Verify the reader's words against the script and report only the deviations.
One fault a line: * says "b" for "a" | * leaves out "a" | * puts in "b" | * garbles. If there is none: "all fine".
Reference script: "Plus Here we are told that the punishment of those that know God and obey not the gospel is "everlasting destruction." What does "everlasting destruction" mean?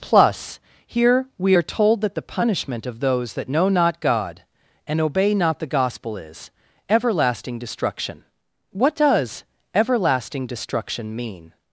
* puts in "not"